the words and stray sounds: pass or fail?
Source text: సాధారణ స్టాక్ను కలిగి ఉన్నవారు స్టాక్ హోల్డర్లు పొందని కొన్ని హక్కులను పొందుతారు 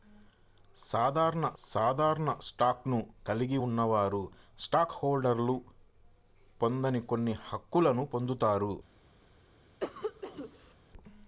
fail